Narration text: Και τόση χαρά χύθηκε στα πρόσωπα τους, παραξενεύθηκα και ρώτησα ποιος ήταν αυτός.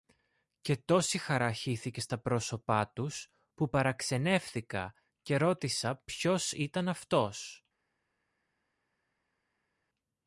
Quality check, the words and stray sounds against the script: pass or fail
fail